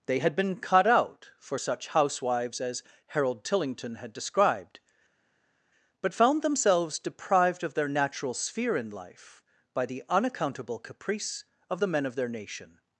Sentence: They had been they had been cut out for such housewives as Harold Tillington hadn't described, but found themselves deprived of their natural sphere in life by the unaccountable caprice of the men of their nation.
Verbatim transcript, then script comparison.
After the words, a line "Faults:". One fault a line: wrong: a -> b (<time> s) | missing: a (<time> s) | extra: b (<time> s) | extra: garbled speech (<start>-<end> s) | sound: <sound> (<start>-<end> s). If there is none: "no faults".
They had been cut out for such housewives as Harold Tillington had described, but found themselves deprived of their natural sphere in life by the unaccountable caprice of the men of their nation.
Faults:
missing: they had been (0.6 s)
wrong: hadn't -> had (4.0 s)